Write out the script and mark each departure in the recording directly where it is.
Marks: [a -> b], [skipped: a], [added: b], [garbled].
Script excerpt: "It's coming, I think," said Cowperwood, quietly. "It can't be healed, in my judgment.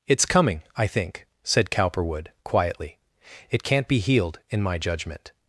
"It's coming, I think," said Cowperwood, quietly. "It can't be healed, in my judgment.